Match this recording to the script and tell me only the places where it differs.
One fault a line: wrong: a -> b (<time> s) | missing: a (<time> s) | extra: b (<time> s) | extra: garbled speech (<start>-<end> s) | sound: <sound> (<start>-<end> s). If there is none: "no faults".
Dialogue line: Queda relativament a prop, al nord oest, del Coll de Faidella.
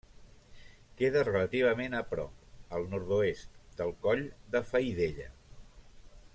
no faults